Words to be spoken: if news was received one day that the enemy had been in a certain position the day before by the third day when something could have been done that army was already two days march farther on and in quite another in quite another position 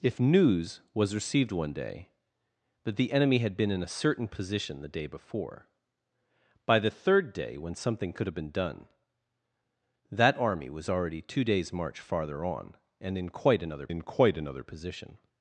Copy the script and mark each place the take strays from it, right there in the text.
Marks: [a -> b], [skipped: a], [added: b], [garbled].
if news was received one day that the enemy had been in a certain position the day before by the third day when something could have been done that army was already two days march farther on and in quite another in quite another position